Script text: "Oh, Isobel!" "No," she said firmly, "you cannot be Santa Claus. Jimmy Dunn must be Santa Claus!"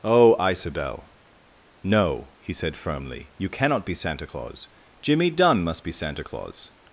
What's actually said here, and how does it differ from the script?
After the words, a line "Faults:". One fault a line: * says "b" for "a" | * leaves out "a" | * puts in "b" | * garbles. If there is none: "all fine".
"Oh, Isobel!" "No," he said firmly, "you cannot be Santa Claus. Jimmy Dunn must be Santa Claus!"
Faults:
* says "he" for "she"